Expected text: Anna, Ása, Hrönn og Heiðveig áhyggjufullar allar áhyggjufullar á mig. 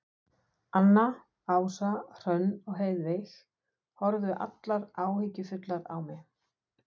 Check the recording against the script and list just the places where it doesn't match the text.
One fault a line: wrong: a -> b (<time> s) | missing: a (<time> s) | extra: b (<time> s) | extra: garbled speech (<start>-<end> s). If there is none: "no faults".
wrong: áhyggjufullar -> horfðu (4.0 s)